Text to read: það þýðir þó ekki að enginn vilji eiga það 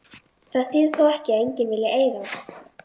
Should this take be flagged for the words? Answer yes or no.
no